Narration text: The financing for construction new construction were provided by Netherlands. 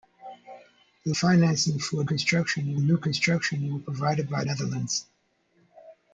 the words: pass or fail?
pass